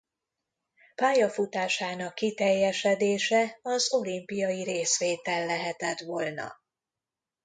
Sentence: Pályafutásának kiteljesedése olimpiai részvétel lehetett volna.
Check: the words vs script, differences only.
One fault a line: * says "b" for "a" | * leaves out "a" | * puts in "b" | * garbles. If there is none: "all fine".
* puts in "az"